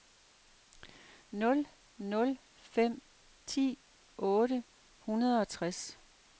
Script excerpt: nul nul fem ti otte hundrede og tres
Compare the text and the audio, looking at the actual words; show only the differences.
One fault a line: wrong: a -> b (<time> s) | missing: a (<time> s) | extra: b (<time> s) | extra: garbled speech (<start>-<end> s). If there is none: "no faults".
no faults